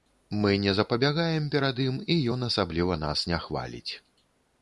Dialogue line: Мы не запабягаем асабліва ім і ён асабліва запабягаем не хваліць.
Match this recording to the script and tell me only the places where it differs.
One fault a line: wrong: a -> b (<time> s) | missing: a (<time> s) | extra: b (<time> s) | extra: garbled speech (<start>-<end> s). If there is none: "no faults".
wrong: асабліва -> перад (1.6 s)
wrong: запабягаем -> нас (3.1 s)